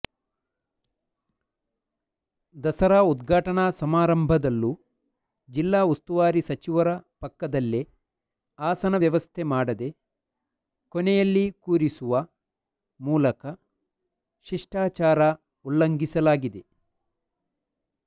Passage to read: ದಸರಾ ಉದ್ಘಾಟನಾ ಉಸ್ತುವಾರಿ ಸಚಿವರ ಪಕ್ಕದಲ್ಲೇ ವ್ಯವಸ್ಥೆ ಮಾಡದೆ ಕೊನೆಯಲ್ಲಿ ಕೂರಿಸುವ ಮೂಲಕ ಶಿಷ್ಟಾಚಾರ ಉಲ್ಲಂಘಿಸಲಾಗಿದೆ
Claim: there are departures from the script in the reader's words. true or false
true